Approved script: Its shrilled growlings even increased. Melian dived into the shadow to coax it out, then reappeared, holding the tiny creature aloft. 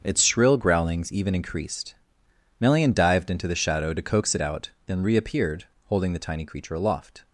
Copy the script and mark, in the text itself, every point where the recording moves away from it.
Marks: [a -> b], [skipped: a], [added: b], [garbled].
Its [shrilled -> shrill] growlings even increased. Melian dived into the shadow to coax it out, then reappeared, holding the tiny creature aloft.